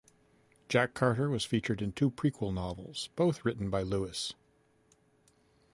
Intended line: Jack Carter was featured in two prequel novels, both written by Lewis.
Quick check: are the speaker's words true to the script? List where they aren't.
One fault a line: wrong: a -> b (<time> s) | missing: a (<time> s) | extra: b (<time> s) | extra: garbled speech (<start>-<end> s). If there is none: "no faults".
no faults